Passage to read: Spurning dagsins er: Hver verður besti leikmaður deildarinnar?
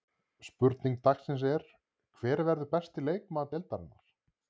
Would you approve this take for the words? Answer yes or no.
yes